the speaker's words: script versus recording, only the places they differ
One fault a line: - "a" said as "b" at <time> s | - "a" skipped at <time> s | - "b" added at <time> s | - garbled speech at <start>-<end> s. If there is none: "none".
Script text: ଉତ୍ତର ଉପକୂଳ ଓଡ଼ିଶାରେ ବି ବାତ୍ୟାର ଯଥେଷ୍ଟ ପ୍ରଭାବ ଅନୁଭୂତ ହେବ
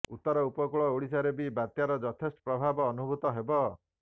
none